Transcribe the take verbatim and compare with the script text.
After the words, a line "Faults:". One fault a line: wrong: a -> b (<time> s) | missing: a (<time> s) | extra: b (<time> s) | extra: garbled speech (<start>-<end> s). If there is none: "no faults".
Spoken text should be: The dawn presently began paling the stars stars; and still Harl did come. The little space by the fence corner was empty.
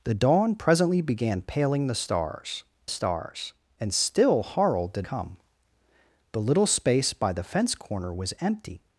The dawn presently began paling the stars stars; and still Harl did come. The little space by the fence corner was empty.
Faults:
no faults